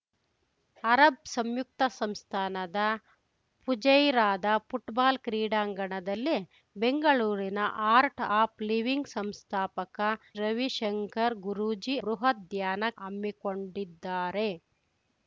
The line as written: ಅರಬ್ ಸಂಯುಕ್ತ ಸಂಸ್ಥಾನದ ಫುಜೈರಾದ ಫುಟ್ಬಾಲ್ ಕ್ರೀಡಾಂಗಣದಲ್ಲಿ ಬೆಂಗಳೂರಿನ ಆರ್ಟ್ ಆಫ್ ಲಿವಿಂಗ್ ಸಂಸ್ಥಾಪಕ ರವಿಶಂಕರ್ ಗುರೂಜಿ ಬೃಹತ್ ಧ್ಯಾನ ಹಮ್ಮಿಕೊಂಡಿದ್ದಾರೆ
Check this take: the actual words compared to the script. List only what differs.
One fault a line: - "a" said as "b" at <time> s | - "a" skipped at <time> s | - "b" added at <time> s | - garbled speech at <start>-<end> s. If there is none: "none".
none